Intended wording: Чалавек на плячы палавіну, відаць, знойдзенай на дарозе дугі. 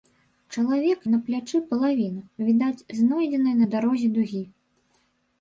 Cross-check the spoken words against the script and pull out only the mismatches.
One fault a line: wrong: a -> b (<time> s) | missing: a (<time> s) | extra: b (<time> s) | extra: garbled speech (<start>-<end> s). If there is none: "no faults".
no faults